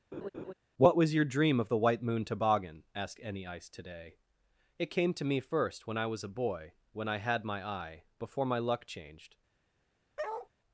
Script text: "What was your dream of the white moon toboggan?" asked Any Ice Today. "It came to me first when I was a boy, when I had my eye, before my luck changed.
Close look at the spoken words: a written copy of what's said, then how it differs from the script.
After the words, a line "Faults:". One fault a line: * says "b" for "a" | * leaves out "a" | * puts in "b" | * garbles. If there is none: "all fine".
"What was your dream of the white moon toboggan?" asked Any Ice Today. "It came to me first when I was a boy, when I had my eye, before my luck changed.
Faults:
all fine